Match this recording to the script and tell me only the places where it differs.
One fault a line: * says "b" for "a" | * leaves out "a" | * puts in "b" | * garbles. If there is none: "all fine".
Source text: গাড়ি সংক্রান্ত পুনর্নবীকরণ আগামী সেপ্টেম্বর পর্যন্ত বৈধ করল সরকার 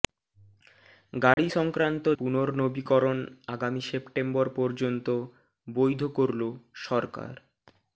all fine